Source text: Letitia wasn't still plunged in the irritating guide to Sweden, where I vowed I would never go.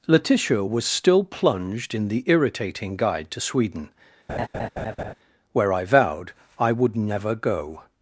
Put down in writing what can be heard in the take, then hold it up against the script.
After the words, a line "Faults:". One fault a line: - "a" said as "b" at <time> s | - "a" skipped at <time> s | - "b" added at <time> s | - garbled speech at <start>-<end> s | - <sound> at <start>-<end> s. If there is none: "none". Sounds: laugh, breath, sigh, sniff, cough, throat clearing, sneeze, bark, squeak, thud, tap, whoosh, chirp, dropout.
Letitia was still plunged in the irritating guide to Sweden, where I vowed I would never go.
Faults:
- "wasn't" said as "was" at 0.6 s
- laugh at 4.3-5.1 s